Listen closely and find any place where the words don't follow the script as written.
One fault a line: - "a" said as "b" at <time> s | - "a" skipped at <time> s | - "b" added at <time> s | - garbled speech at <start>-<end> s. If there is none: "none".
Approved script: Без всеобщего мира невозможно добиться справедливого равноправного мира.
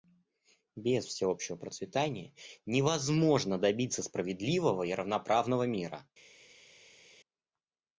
- "мира" said as "процветания" at 1.6 s
- "и" added at 4.8 s